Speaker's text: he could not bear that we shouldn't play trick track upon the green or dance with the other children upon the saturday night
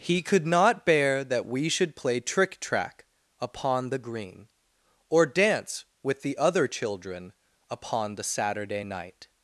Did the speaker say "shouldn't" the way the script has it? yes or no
no